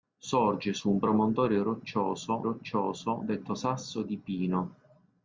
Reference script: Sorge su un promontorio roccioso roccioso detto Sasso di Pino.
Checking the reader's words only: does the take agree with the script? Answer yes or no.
yes